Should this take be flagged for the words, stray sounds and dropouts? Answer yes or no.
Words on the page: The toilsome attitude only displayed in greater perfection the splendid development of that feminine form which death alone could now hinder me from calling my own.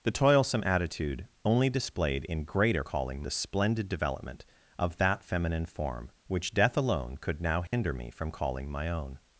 yes